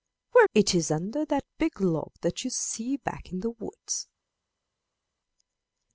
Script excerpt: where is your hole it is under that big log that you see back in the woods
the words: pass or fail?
fail